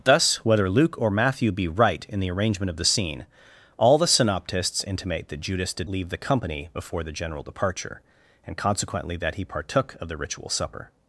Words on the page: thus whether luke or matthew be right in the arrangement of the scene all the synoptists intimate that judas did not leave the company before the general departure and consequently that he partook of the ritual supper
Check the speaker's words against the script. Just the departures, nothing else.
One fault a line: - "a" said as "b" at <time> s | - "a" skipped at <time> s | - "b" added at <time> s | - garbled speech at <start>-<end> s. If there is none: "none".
- "not" skipped at 5.9 s